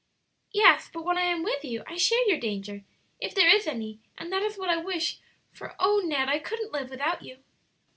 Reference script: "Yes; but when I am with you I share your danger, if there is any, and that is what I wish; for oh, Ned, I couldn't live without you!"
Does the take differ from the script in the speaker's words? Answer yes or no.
no